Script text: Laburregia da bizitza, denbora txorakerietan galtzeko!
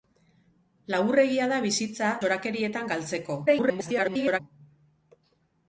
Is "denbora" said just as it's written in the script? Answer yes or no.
no